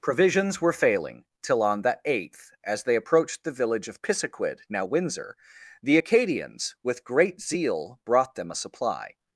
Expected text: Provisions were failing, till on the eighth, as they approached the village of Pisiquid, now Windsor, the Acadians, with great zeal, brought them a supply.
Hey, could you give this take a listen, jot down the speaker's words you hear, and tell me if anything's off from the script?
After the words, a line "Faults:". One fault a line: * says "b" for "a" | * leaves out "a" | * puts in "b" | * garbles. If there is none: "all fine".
Provisions were failing, till on the eighth, as they approached the village of Pisiquid, now Windsor, the Acadians, with great zeal, brought them a supply.
Faults:
all fine